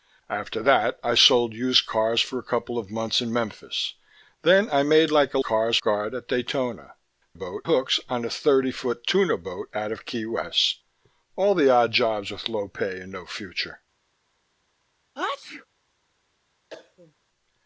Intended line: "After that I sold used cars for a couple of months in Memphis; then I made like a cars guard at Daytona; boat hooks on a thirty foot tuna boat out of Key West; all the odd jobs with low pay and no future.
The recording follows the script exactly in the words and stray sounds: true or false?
false